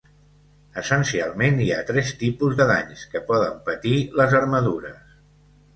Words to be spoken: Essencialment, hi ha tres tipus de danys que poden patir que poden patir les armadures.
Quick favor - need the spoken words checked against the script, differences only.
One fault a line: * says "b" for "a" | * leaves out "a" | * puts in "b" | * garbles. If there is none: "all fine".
* leaves out "que poden patir"